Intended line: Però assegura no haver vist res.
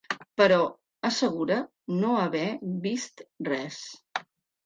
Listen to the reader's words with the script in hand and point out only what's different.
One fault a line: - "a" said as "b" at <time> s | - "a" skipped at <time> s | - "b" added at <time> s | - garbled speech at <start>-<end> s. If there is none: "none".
none